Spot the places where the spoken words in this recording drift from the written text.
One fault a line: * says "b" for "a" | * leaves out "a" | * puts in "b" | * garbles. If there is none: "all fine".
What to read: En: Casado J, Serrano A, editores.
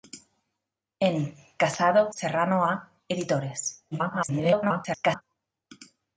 * leaves out "J"
* garbles